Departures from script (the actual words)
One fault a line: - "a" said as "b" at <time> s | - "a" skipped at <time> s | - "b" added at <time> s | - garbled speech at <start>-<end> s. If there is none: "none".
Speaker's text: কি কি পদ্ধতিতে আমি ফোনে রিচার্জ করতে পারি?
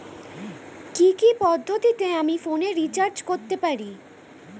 none